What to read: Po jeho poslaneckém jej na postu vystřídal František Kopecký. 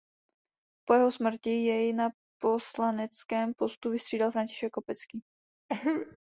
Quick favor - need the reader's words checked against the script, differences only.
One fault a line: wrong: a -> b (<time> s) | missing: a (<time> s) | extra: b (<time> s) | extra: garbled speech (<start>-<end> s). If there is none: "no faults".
wrong: poslaneckém -> smrti (1.1 s)
extra: poslaneckém (2.4 s)